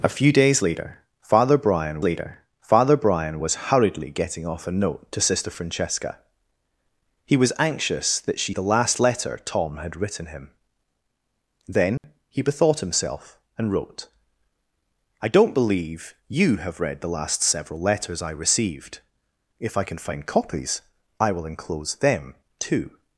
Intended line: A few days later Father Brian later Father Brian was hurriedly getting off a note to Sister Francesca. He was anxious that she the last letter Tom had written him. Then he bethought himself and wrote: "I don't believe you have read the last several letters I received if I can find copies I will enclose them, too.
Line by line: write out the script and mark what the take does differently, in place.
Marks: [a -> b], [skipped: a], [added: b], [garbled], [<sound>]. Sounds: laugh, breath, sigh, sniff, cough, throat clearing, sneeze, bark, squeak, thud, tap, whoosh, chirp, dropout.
A few days later Father Brian later Father Brian was hurriedly getting off a note to Sister Francesca. He was anxious that she the last letter Tom had written him. Then [dropout] he bethought himself and wrote: "I don't believe you have read the last several letters I received if I can find copies I will enclose them, too.